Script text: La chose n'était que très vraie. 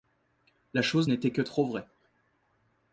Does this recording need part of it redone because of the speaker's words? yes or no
yes